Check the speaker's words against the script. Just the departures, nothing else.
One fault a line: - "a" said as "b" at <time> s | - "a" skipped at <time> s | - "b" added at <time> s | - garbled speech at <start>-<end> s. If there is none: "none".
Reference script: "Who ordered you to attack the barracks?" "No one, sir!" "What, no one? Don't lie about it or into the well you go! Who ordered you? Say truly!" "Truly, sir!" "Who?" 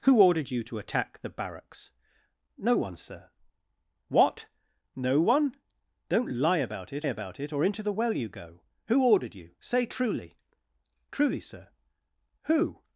- "about it" added at 7.0 s